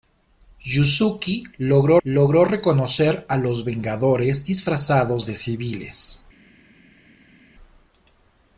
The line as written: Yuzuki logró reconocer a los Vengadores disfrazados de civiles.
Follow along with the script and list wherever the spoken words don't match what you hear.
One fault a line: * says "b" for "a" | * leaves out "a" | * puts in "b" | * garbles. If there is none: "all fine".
* puts in "logró"